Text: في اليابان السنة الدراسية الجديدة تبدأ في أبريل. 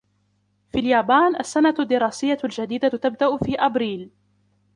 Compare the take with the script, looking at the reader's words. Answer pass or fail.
pass